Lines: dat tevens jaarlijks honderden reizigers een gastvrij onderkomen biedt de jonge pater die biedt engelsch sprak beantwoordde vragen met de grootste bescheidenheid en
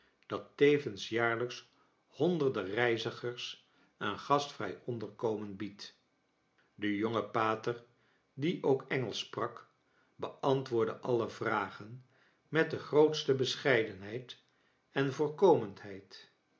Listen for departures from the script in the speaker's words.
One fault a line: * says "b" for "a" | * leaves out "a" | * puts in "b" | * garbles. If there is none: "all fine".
* says "ook" for "biedt"
* puts in "alle"